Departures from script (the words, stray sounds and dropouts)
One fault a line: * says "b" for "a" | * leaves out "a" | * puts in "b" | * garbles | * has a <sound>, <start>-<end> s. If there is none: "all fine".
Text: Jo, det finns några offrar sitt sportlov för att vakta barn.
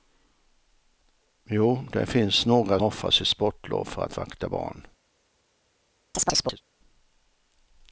* has a chirp, 6.1-6.6 s